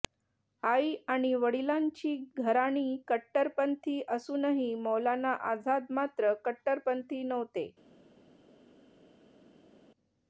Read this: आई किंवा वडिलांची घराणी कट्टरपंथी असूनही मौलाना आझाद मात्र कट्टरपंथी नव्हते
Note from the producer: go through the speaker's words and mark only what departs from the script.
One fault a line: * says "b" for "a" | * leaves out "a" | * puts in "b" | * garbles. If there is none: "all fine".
* says "आणि" for "किंवा"